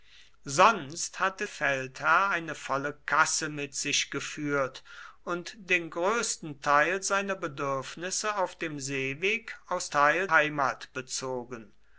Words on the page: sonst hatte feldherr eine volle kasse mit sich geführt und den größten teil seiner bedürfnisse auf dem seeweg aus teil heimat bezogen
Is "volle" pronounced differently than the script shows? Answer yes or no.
no